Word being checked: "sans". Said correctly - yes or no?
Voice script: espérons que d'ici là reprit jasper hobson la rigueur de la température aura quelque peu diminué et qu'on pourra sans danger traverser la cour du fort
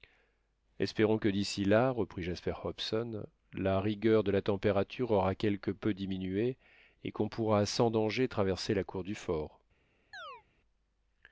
yes